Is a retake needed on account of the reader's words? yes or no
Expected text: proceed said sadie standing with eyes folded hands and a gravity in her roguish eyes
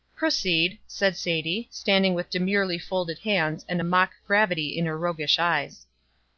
yes